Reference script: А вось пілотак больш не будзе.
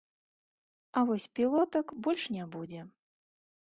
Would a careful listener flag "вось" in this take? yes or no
no